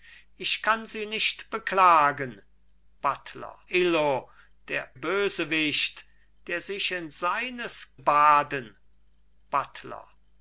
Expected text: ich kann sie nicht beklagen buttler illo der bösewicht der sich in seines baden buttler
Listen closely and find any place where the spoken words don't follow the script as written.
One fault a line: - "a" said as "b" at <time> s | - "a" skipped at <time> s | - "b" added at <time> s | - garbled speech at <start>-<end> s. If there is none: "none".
none